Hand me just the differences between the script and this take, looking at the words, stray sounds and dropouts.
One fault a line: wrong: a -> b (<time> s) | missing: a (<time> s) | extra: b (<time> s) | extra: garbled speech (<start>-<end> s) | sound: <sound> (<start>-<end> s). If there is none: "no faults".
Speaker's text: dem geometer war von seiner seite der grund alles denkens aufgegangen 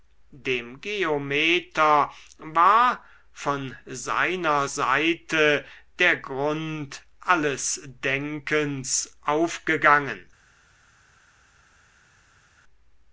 no faults